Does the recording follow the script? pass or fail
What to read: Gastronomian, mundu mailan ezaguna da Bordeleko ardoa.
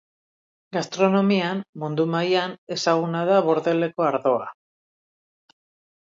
pass